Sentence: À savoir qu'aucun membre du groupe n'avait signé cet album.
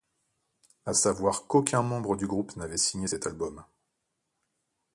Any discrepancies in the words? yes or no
no